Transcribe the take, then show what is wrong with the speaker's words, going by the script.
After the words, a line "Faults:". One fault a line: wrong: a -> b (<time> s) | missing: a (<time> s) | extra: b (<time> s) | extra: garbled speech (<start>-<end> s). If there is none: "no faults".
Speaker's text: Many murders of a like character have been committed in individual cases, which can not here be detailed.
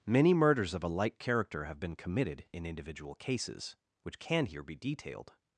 Many murders of a like character have been committed in individual cases, which can here be detailed.
Faults:
missing: not (4.4 s)